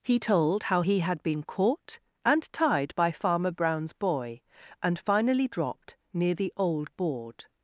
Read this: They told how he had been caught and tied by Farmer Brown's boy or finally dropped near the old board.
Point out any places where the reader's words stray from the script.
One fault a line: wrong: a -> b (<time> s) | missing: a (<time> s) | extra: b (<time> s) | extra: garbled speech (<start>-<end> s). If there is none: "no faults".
wrong: They -> He (0.0 s)
wrong: or -> and (4.8 s)